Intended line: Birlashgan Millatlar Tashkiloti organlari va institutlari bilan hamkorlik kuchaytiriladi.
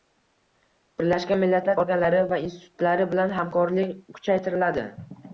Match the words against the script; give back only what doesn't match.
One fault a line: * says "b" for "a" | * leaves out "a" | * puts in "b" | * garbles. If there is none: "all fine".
* leaves out "Tashkiloti"